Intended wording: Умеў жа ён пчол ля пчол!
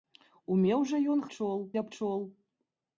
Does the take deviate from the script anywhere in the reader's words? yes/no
no